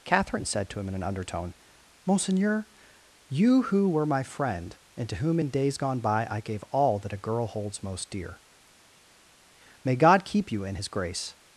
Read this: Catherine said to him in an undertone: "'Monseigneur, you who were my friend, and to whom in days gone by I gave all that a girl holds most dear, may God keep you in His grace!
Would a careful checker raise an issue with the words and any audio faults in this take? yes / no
no